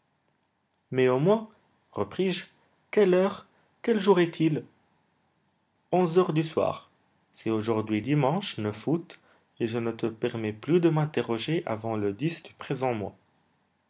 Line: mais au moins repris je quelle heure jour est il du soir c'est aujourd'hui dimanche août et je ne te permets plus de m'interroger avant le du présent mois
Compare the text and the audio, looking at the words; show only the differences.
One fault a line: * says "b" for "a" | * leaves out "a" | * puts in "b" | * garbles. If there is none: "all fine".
* puts in "quel"
* puts in "onze heures"